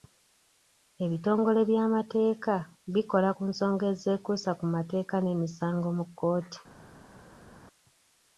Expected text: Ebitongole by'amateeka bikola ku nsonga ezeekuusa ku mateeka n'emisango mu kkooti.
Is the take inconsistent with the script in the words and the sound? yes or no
no